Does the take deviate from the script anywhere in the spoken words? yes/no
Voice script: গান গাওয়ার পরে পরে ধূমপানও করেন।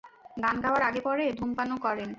yes